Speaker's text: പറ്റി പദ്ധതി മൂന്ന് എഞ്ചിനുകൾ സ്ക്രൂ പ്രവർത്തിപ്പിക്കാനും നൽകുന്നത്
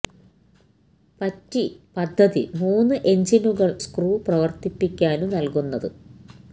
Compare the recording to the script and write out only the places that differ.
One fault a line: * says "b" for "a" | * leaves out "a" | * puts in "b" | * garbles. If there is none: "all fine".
all fine